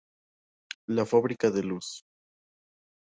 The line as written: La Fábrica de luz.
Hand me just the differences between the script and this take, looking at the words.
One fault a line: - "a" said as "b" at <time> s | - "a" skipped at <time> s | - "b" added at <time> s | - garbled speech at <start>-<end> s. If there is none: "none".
none